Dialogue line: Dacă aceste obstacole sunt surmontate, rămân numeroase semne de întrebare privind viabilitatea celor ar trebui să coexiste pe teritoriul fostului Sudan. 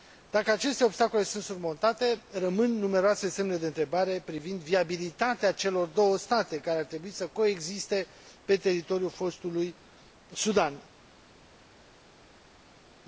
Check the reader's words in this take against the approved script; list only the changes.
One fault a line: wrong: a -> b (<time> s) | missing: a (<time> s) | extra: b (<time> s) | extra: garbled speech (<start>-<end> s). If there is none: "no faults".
extra: două state care (5.9 s)